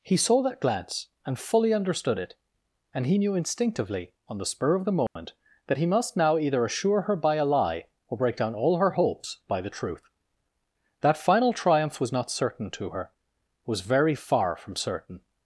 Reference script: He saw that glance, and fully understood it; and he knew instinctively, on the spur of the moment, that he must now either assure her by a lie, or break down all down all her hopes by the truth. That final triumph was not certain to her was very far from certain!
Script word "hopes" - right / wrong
right